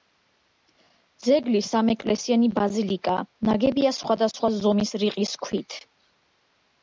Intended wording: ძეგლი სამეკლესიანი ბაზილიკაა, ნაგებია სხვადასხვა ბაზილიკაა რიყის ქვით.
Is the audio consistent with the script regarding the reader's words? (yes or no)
no